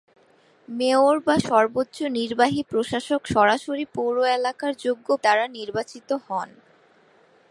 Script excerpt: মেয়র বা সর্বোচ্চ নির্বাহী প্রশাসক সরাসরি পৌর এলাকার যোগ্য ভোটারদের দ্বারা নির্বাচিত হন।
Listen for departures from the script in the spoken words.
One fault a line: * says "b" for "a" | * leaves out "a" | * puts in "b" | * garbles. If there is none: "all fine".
* leaves out "ভোটারদের"